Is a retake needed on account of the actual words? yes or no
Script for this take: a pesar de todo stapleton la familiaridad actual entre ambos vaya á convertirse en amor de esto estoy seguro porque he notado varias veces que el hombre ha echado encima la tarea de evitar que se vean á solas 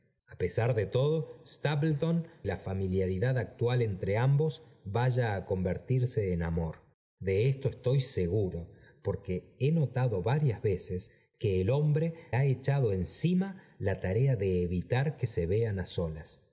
no